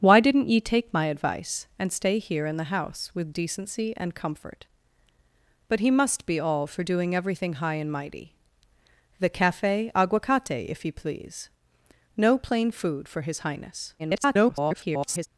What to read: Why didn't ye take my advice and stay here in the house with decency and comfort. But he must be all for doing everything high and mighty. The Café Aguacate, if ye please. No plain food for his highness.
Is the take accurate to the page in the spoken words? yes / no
no